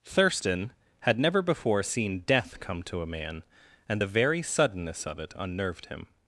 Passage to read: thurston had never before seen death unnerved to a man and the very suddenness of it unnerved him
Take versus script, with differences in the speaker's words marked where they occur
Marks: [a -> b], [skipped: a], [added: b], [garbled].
thurston had never before seen death [unnerved -> come] to a man and the very suddenness of it unnerved him